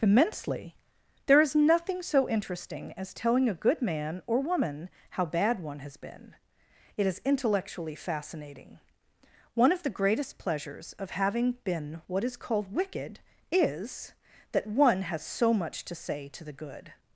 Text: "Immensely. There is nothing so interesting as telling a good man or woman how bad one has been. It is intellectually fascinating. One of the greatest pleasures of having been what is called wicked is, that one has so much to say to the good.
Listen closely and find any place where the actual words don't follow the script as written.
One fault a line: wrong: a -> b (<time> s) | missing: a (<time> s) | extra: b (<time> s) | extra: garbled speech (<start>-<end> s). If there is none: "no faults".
no faults